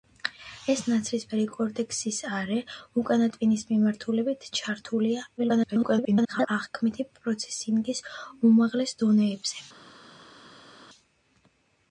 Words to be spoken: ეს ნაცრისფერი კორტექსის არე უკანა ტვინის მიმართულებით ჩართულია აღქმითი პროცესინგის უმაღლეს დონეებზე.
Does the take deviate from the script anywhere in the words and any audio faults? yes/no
yes